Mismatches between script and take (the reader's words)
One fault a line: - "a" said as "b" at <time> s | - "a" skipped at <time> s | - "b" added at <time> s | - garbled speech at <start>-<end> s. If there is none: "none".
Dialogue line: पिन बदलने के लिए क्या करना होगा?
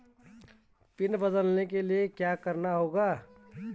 none